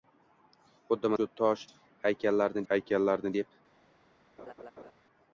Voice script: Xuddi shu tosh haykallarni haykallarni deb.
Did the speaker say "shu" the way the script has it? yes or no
yes